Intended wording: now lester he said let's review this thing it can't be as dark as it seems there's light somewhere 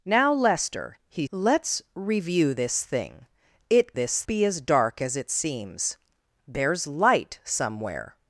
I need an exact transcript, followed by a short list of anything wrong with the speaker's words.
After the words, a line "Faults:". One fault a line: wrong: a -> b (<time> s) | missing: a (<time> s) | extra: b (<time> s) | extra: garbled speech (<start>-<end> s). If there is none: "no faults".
now lester he let's review this thing it this be as dark as it seems there's light somewhere
Faults:
missing: said (1.3 s)
wrong: can't -> this (3.9 s)